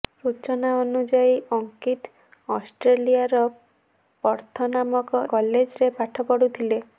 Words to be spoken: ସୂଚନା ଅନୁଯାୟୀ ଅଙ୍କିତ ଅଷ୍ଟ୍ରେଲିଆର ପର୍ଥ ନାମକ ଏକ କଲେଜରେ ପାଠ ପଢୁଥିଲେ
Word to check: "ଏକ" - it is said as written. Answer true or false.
false